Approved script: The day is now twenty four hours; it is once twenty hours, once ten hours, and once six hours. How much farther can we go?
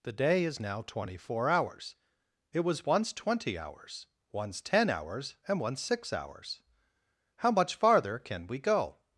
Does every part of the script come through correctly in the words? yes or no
no